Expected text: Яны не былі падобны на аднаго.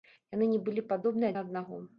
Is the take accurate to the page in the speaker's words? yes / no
yes